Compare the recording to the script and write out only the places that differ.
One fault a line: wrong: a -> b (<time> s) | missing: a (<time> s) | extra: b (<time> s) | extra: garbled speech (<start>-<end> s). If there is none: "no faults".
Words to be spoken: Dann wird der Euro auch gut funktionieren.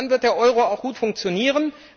no faults